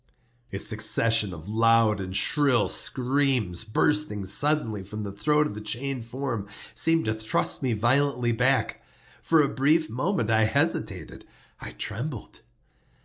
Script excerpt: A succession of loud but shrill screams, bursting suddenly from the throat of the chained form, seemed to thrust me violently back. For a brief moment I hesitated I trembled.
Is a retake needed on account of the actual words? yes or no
yes